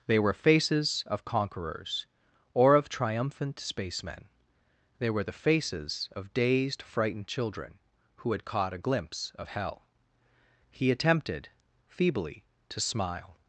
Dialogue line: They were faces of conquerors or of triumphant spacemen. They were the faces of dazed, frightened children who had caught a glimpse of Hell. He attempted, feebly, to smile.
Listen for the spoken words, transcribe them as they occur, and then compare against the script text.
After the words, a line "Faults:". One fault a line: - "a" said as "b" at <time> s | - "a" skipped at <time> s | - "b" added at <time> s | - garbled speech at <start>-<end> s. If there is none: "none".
They were faces of conquerors or of triumphant spacemen. They were the faces of dazed, frightened children who had caught a glimpse of Hell. He attempted, feebly, to smile.
Faults:
none